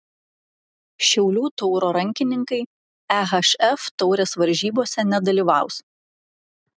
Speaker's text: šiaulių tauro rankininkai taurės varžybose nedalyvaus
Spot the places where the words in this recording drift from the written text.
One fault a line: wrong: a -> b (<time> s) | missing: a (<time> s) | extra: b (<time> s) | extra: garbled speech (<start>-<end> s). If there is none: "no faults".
extra: ehf (3.2 s)